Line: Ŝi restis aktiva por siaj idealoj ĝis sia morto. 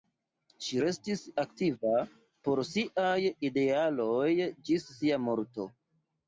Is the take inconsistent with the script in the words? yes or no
no